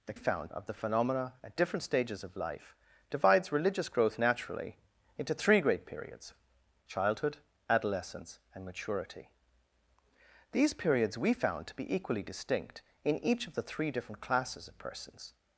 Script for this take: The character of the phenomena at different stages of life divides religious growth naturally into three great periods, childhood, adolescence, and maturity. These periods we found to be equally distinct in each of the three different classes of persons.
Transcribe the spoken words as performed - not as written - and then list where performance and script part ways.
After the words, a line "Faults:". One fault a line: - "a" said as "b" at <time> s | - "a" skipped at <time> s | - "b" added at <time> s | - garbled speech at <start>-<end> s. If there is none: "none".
The found of the phenomena at different stages of life divides religious growth naturally into three great periods, childhood, adolescence, and maturity. These periods we found to be equally distinct in each of the three different classes of persons.
Faults:
- "character" said as "found" at 0.1 s